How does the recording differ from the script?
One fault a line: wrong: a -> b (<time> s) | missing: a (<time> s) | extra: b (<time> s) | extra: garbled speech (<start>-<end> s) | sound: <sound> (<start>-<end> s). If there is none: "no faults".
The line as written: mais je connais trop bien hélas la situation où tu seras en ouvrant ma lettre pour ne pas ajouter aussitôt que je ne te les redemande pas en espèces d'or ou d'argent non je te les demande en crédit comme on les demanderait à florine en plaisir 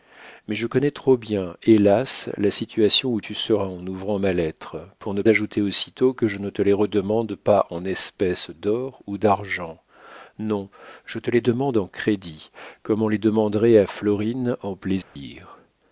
missing: pas (5.2 s)
sound: dropout (15.0-15.2 s)